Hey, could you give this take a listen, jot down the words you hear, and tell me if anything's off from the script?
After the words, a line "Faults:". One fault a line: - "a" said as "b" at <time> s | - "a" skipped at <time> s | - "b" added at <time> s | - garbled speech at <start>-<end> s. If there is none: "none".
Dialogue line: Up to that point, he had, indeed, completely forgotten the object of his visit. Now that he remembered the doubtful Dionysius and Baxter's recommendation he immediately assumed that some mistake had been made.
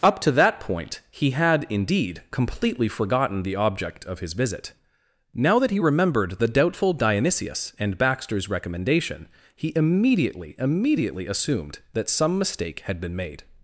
Up to that point, he had, indeed, completely forgotten the object of his visit. Now that he remembered the doubtful Dionysius and Baxter's recommendation he immediately immediately assumed that some mistake had been made.
Faults:
- "immediately" added at 10.6 s